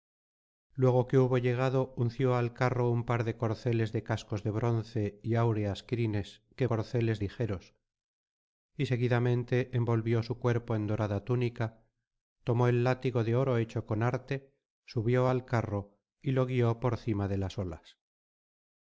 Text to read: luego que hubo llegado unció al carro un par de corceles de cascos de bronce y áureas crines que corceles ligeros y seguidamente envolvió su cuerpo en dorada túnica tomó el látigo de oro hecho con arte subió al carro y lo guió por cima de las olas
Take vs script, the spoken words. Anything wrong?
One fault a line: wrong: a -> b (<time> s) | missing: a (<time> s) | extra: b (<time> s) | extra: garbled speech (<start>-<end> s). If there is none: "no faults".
no faults